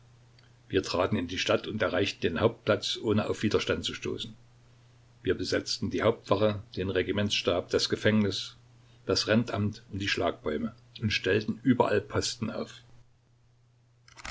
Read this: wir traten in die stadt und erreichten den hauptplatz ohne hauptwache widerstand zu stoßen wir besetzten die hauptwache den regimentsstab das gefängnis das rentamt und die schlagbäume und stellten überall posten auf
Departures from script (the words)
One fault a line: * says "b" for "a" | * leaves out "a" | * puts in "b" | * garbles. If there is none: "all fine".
* says "auf" for "hauptwache"